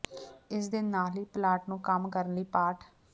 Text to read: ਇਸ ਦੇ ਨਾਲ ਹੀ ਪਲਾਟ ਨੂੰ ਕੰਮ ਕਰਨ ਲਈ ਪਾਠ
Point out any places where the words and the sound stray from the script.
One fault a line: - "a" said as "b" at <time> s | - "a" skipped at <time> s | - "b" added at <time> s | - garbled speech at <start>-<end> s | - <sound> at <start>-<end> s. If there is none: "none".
none